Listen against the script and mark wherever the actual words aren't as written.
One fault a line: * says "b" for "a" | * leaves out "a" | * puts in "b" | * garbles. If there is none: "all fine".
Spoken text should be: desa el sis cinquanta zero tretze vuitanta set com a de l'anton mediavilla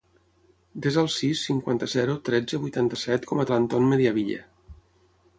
all fine